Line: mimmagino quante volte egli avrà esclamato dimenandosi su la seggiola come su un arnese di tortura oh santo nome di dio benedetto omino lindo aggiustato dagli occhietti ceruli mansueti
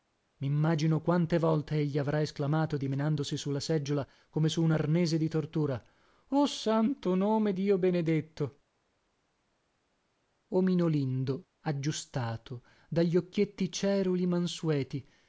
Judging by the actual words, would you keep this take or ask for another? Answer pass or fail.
fail